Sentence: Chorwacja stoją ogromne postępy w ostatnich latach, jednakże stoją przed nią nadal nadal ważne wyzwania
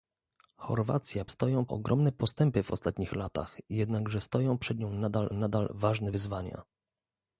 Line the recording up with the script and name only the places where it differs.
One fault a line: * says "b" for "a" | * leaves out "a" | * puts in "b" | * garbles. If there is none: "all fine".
all fine